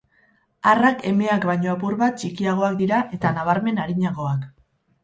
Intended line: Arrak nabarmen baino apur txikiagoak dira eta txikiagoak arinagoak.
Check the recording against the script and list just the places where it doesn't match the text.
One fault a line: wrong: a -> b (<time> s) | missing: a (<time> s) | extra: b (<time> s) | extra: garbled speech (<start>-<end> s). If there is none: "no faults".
wrong: nabarmen -> emeak (1.1 s)
extra: bat (2.0 s)
wrong: txikiagoak -> nabarmen (3.4 s)